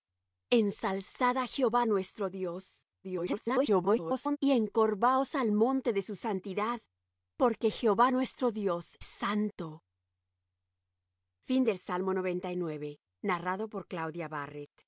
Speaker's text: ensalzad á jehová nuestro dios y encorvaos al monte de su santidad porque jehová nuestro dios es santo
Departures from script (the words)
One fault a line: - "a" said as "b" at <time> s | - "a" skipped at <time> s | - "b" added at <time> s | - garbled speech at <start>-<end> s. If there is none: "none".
- garbled speech at 3.0-4.4 s
- "es" skipped at 9.0 s